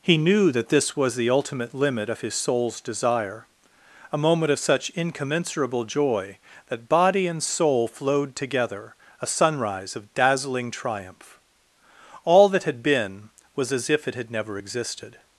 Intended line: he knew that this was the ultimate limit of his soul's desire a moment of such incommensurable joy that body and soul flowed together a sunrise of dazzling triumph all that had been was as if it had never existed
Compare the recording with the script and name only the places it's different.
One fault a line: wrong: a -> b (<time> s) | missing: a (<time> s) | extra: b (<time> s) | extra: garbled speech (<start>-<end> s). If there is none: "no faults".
no faults